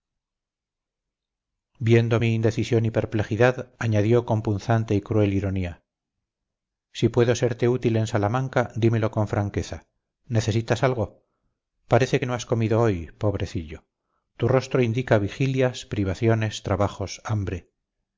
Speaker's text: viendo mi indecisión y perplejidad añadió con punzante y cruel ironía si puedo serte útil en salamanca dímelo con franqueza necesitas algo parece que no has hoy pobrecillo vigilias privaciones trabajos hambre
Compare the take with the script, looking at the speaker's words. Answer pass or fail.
fail